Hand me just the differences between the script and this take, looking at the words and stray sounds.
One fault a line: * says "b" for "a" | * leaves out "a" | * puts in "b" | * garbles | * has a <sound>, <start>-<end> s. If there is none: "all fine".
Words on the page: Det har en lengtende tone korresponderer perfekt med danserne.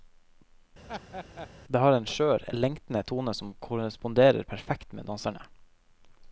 * has a laugh, 0.9-1.5 s
* puts in "skjør"
* puts in "som"